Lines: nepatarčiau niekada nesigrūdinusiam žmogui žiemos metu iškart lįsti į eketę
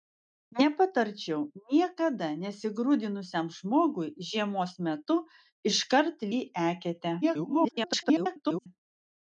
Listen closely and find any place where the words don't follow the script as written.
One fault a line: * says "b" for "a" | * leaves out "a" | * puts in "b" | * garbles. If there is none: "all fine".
* leaves out "lįsti"
* garbles